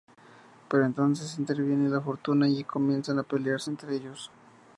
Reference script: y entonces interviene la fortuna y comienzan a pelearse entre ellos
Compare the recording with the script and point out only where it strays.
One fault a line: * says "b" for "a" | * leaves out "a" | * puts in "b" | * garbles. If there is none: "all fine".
* says "pero" for "y"